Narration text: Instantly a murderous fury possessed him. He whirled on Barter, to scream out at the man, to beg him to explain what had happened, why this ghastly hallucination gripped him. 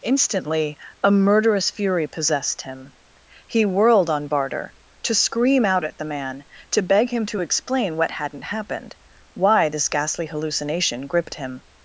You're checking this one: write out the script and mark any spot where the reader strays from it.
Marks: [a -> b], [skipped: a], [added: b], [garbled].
Instantly a murderous fury possessed him. He whirled on Barter, to scream out at the man, to beg him to explain what [had -> hadn't] happened, why this ghastly hallucination gripped him.